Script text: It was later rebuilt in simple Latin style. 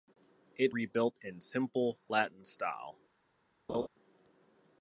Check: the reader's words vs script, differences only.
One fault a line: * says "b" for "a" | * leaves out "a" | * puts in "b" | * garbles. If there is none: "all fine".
* leaves out "was later"